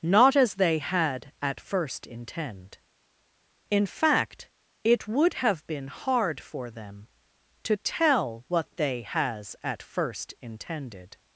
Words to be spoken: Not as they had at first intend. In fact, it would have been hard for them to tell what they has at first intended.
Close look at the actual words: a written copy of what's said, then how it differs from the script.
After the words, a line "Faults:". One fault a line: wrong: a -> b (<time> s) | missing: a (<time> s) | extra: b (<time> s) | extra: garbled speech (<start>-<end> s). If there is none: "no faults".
Not as they had at first intend. In fact, it would have been hard for them to tell what they has at first intended.
Faults:
no faults